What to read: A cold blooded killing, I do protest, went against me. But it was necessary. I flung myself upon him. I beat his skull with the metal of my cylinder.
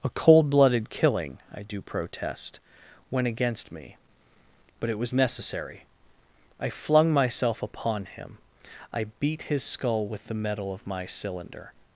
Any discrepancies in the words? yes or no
no